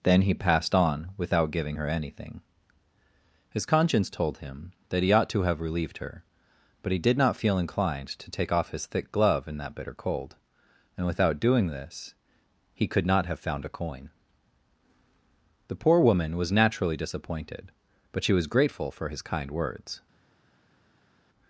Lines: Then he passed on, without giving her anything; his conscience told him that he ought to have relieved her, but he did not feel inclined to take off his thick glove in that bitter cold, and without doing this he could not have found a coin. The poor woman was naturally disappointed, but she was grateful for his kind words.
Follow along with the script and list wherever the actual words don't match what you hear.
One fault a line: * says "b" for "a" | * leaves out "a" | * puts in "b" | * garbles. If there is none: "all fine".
all fine